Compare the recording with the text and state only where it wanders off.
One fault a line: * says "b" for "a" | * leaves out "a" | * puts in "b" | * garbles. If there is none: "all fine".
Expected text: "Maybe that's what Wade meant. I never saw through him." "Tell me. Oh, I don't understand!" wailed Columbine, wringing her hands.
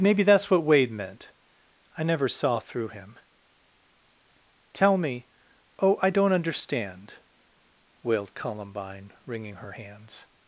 all fine